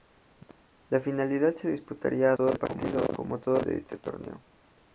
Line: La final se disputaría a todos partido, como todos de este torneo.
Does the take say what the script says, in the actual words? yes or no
yes